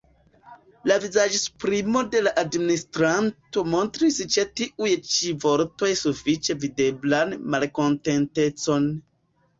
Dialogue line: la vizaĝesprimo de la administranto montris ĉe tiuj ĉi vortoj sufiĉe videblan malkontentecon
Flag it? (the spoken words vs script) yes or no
no